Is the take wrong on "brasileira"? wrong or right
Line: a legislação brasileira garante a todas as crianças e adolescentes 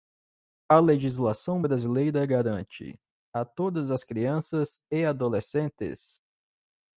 right